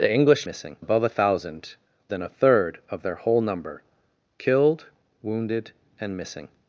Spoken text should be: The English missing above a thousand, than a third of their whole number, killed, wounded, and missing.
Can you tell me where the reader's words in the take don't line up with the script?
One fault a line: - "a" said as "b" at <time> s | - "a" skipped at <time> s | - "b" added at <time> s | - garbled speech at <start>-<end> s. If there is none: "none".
none